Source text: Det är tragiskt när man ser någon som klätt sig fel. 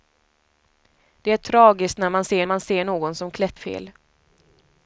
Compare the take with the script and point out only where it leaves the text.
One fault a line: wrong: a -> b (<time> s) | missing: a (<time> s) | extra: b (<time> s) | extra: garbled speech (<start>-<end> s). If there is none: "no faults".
extra: man ser (2.4 s)
missing: sig (3.6 s)